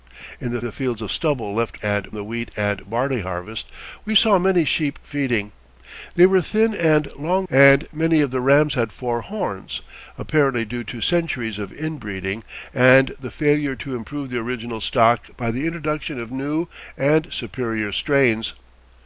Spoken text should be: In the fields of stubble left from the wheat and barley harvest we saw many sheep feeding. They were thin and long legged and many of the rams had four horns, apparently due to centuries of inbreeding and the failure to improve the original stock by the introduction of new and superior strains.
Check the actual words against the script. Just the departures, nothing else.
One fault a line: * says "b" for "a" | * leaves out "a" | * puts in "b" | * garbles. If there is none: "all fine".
* puts in "the"
* says "and" for "from"
* leaves out "legged"